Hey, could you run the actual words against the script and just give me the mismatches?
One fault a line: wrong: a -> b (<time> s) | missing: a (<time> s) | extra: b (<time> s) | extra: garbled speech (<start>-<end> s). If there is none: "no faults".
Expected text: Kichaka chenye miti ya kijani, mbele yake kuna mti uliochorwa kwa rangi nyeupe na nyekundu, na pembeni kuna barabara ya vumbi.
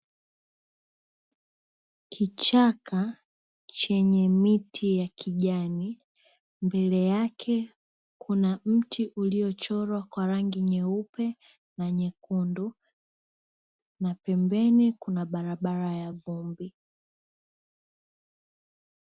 no faults